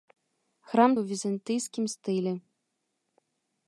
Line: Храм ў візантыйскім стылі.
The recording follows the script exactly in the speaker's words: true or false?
true